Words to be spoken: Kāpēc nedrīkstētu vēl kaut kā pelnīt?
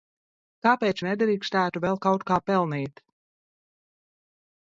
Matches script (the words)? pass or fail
pass